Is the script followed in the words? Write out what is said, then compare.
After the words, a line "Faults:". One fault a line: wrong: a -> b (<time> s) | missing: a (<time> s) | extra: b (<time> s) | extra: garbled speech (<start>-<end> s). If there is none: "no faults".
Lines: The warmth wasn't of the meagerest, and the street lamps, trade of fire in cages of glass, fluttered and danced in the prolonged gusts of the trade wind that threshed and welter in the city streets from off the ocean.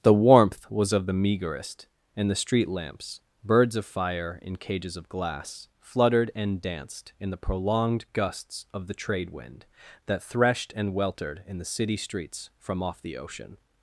The warmth was of the meagerest, and the street lamps, birds of fire in cages of glass, fluttered and danced in the prolonged gusts of the trade wind that threshed and weltered in the city streets from off the ocean.
Faults:
wrong: wasn't -> was (0.7 s)
wrong: trade -> birds (3.4 s)
wrong: welter -> weltered (10.9 s)